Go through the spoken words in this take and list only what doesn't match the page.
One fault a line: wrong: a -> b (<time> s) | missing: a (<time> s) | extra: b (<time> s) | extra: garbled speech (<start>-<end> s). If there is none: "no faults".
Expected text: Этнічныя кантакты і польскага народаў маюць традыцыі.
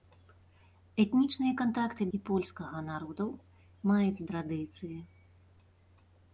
no faults